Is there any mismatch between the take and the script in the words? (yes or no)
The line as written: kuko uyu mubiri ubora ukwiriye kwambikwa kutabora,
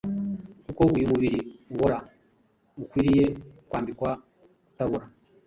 no